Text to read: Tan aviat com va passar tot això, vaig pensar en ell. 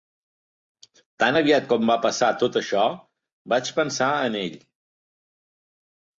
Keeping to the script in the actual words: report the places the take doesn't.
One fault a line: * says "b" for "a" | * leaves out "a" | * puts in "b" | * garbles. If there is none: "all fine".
all fine